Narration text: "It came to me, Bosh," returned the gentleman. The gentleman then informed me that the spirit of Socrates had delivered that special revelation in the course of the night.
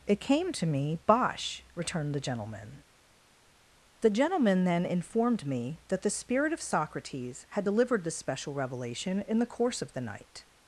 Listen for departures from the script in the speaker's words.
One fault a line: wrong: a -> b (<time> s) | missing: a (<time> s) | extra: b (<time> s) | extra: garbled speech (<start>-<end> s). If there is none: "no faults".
wrong: that -> this (8.0 s)